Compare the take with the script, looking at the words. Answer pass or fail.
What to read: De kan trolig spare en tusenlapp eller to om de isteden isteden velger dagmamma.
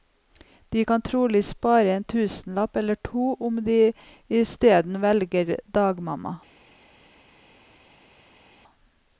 fail